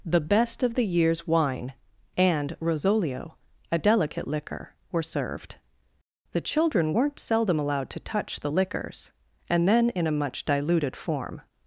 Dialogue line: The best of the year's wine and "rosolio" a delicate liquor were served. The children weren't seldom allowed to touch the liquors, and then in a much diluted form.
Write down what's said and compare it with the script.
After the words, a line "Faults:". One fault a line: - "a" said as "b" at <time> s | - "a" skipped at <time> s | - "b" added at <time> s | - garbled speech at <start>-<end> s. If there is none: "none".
The best of the year's wine and "rosolio" a delicate liquor were served. The children weren't seldom allowed to touch the liquors, and then in a much diluted form.
Faults:
none